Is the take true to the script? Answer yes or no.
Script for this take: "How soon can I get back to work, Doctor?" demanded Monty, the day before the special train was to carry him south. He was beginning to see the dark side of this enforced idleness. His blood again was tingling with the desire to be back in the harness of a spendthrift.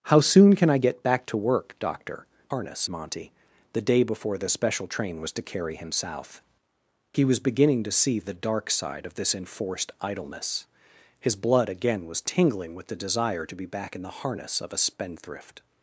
no